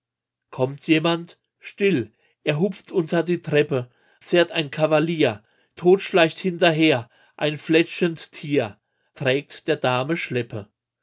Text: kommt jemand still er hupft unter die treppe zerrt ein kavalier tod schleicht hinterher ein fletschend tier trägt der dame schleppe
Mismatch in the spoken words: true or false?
false